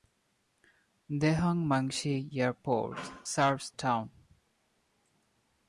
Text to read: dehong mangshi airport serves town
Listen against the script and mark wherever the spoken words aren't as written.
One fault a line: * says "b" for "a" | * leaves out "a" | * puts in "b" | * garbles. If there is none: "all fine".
all fine